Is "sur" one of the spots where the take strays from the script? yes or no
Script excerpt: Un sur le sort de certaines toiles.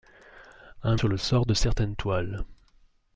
no